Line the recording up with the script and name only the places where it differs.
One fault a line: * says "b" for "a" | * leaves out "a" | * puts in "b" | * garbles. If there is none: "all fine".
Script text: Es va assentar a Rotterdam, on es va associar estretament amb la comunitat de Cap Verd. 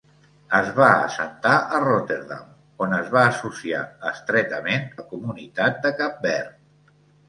* leaves out "amb"